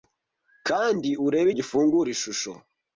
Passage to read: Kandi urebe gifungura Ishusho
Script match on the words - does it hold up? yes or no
yes